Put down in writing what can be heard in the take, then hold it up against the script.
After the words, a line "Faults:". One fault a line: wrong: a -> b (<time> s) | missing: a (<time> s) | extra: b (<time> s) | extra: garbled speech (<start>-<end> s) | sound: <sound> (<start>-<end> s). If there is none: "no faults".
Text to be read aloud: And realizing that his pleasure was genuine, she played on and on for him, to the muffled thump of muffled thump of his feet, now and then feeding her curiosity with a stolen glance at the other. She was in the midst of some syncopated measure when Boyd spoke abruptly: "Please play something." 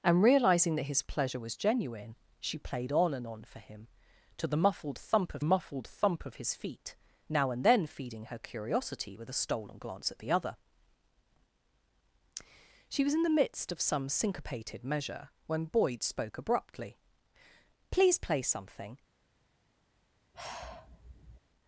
And realizing that his pleasure was genuine, she played on and on for him, to the muffled thump of muffled thump of his feet, now and then feeding her curiosity with a stolen glance at the other. She was in the midst of some syncopated measure when Boyd spoke abruptly: "Please play something."
Faults:
sound: sigh (20.3-21.4 s)